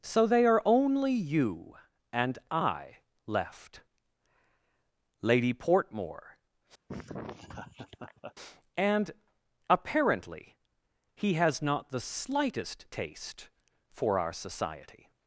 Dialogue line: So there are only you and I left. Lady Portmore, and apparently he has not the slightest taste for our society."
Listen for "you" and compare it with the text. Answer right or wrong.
right